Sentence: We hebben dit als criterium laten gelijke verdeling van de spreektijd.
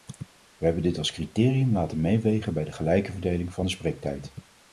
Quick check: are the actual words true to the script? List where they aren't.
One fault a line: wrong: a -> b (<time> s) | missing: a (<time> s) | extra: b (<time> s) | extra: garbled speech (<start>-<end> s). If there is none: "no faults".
extra: meewegen bij de (2.0 s)